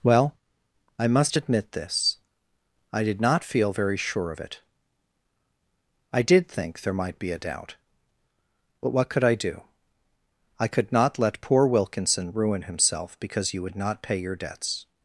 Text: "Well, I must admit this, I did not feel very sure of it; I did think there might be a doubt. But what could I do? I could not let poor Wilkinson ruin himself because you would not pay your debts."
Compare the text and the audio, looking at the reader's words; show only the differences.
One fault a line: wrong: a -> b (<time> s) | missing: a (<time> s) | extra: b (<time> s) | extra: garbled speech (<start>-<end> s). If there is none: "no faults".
no faults